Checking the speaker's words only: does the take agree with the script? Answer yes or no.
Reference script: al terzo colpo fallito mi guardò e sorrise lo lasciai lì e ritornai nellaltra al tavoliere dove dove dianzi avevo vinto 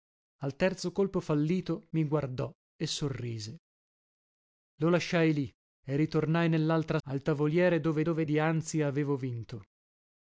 yes